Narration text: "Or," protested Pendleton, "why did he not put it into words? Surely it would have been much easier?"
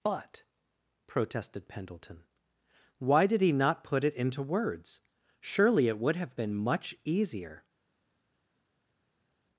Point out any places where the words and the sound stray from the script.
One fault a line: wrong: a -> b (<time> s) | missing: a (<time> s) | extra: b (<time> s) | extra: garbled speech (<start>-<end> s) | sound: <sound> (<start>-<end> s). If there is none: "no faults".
wrong: Or -> But (0.0 s)